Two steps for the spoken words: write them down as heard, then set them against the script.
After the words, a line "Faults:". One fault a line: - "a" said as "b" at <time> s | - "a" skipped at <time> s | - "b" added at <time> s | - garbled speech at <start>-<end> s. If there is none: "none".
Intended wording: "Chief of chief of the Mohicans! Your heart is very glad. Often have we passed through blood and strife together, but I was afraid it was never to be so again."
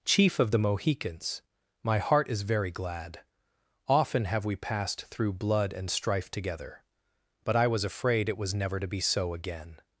"Chief of the Mohicans! My heart is very glad. Often have we passed through blood and strife together, but I was afraid it was never to be so again."
Faults:
- "chief of" skipped at 0.5 s
- "Your" said as "My" at 1.8 s